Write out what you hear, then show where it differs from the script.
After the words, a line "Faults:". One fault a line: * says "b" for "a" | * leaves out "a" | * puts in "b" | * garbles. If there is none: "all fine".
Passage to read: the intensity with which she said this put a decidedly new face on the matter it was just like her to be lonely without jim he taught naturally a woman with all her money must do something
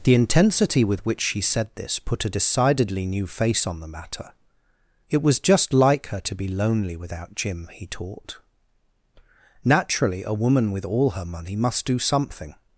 the intensity with which she said this put a decidedly new face on the matter it was just like her to be lonely without jim he taught naturally a woman with all her money must do something
Faults:
all fine